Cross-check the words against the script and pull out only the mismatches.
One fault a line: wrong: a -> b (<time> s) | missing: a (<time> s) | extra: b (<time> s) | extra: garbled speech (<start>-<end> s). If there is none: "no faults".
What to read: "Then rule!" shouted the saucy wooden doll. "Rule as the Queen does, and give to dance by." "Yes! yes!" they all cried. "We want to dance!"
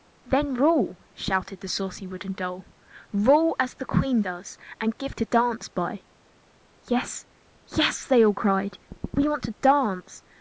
no faults